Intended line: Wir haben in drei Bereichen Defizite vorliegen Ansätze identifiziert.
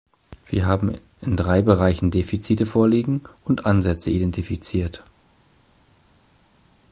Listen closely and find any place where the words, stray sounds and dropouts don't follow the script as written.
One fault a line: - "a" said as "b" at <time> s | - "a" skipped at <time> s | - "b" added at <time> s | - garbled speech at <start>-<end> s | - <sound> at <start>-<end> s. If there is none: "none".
- "und" added at 3.4 s